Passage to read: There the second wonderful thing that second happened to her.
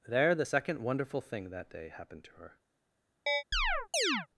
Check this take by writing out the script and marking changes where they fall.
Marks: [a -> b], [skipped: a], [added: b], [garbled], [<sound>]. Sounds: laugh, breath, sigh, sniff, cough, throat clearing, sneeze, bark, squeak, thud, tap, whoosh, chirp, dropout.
There the second wonderful thing that [second -> day] happened to her. [chirp]